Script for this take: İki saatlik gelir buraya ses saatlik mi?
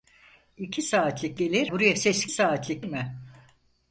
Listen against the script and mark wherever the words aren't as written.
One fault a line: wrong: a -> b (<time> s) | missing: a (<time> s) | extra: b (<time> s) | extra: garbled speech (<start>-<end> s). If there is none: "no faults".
no faults